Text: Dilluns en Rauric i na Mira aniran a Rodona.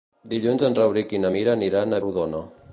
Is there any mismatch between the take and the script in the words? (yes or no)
no